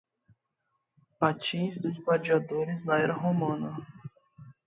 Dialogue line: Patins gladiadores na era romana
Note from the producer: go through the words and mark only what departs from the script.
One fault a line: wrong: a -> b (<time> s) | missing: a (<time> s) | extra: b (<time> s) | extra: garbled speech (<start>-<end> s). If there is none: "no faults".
extra: dos (1.8 s)